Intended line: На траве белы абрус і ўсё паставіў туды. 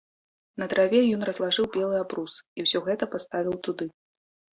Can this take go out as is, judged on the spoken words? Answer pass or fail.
fail